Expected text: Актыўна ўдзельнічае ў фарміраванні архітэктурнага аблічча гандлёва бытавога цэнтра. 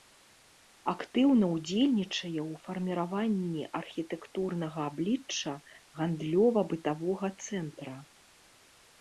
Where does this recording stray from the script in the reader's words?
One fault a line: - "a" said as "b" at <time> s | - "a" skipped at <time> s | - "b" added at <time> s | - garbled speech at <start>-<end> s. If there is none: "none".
none